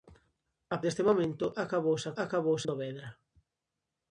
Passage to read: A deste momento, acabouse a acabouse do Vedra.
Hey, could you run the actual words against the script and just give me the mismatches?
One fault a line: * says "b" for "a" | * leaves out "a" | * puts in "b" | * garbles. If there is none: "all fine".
all fine